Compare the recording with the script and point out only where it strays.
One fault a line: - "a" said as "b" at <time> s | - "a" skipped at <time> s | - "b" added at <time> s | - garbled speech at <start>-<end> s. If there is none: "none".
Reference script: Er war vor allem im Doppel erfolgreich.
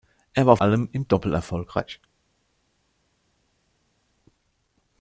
- "vor" skipped at 0.6 s